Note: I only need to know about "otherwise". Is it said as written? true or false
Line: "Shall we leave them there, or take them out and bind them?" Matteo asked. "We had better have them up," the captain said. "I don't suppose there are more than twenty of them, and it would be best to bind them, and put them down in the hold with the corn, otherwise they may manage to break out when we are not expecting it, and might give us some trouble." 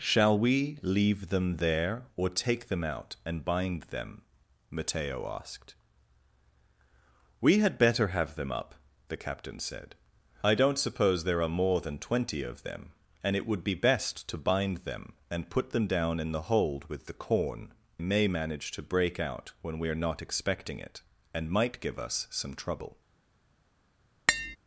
false